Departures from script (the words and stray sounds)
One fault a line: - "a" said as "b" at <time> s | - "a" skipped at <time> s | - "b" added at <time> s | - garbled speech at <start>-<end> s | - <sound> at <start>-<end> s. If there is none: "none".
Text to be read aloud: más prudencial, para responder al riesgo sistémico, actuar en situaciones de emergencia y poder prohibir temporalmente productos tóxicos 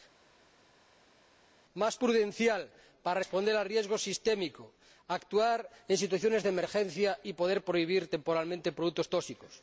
none